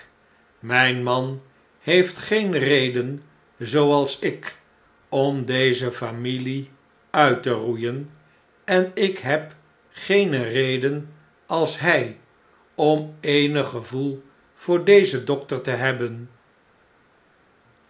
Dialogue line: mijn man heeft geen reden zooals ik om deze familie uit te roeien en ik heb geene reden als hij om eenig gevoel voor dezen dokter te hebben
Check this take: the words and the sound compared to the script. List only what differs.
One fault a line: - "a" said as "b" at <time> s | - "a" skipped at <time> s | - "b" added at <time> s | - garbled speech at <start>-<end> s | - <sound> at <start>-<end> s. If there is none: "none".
none